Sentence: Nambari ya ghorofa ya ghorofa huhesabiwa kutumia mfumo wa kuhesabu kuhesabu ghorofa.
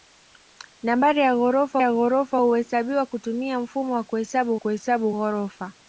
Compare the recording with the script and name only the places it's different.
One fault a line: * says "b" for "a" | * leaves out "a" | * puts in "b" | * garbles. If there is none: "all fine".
all fine